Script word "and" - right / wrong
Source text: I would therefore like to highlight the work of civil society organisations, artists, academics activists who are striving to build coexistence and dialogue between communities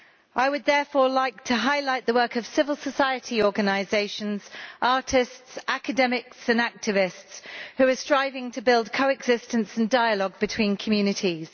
right